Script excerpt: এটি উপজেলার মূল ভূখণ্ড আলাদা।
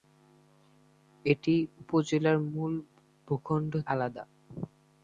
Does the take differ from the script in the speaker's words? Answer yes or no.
no